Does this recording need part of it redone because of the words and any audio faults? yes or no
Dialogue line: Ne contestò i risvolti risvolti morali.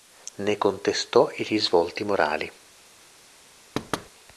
yes